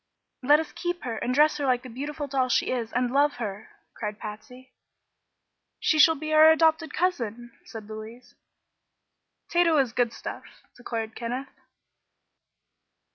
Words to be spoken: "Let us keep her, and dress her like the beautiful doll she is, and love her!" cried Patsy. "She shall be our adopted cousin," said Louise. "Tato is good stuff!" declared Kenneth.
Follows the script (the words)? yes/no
yes